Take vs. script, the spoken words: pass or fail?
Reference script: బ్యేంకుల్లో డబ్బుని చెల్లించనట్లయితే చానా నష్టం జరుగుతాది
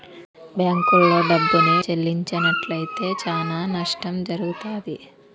pass